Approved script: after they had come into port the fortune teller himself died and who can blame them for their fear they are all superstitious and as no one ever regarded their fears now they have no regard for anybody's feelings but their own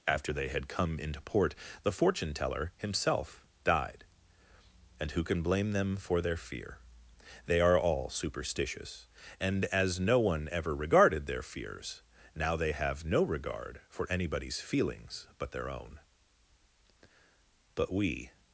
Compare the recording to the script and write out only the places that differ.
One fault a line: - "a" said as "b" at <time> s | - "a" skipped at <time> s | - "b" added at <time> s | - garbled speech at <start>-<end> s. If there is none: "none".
- "but we" added at 17.8 s